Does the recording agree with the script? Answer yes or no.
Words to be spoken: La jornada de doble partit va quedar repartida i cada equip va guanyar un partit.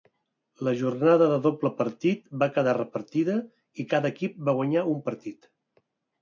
yes